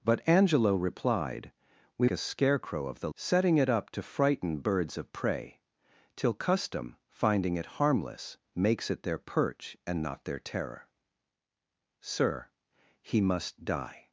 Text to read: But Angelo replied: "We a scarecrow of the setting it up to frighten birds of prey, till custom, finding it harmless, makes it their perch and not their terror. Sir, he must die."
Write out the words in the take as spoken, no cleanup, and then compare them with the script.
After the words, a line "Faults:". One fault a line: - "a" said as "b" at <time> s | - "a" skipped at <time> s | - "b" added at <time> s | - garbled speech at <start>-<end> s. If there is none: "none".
But Angelo replied: "We a scarecrow of the setting it up to frighten birds of prey, till custom, finding it harmless, makes it their perch and not their terror. Sir, he must die."
Faults:
none